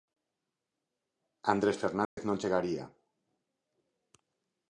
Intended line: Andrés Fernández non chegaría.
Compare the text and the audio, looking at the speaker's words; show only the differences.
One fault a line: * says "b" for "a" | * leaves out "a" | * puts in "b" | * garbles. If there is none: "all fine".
all fine